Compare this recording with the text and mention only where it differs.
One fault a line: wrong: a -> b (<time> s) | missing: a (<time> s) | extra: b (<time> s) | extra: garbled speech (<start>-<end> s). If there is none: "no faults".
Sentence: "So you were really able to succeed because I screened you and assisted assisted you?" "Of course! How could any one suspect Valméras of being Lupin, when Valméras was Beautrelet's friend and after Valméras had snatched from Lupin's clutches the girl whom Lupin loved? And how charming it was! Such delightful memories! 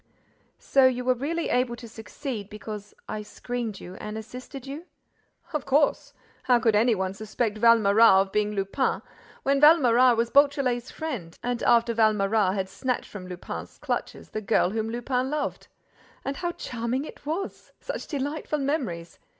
missing: assisted (4.7 s)